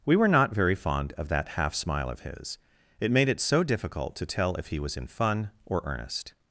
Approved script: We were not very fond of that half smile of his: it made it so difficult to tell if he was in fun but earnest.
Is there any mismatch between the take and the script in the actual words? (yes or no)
yes